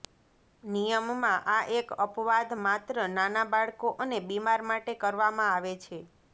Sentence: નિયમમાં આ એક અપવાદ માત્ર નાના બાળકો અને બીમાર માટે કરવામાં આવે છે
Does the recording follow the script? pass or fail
pass